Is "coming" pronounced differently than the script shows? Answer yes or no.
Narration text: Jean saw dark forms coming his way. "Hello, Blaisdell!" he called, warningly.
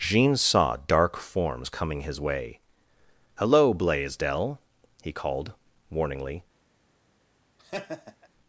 no